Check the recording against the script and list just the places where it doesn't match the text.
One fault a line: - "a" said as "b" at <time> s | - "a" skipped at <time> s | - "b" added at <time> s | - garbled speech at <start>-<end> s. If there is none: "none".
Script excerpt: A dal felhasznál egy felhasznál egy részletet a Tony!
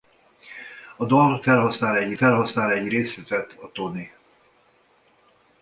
none